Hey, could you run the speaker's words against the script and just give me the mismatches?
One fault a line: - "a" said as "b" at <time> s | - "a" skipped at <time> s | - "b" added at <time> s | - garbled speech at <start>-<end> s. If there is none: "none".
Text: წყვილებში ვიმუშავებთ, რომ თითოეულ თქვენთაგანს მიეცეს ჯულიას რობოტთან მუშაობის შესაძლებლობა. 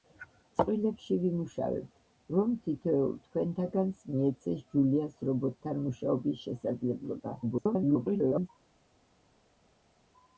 - garbled speech at 7.4-8.5 s